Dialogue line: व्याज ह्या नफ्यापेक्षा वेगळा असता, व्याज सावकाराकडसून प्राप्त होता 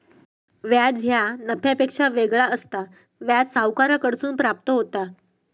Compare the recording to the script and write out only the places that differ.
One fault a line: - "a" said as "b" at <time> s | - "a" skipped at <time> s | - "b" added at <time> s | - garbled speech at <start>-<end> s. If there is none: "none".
none